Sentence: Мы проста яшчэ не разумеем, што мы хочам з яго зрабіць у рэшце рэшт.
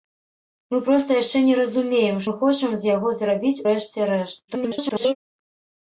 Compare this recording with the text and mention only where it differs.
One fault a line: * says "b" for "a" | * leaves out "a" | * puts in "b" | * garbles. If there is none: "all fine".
* leaves out "што"
* leaves out "у"
* garbles